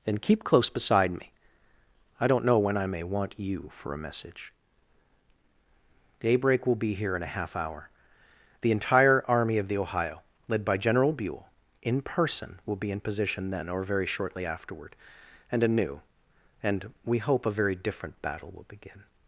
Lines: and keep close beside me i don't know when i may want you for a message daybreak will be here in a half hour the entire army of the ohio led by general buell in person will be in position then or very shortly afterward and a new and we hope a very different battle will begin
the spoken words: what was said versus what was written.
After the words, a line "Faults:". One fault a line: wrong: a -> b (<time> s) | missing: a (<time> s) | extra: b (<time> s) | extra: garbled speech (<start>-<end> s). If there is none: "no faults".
and keep close beside me i don't know when i may want you for a message daybreak will be here in a half hour the entire army of the ohio led by general buell in person will be in position then or very shortly afterward and a new and we hope a very different battle will begin
Faults:
no faults